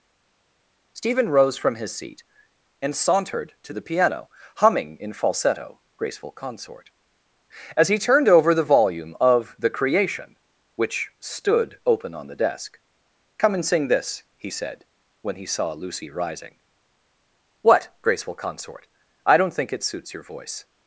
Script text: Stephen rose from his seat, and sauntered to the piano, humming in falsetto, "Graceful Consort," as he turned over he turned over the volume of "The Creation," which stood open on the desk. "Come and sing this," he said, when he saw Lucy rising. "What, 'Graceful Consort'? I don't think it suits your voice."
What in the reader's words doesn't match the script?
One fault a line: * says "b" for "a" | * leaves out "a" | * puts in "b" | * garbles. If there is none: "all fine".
* leaves out "he turned over"